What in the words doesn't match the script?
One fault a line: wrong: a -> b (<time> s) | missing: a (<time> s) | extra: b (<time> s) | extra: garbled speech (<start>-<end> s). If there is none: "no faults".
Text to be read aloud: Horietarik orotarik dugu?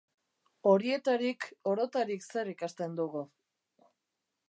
extra: zer ikasten (2.3 s)